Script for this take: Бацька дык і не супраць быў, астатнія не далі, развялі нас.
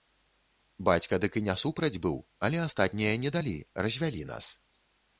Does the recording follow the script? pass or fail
fail